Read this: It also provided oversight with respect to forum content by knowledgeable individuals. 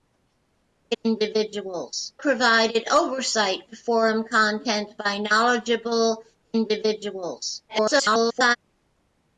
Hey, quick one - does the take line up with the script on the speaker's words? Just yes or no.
no